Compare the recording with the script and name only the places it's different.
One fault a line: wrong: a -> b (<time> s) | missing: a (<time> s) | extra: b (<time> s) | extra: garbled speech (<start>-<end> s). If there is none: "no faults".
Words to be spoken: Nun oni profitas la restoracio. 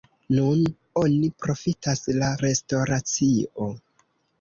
no faults